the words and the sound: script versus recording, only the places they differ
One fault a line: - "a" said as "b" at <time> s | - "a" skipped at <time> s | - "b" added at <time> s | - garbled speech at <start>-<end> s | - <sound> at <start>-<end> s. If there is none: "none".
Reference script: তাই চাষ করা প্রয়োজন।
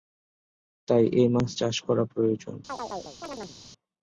- "এ মাছ" added at 1.1 s
- chirp at 2.7-3.6 s